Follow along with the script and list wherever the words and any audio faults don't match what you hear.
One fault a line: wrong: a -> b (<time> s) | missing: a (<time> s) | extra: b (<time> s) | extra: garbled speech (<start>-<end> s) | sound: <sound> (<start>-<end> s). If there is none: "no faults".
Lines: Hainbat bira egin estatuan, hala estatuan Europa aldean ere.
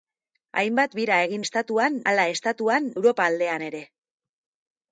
no faults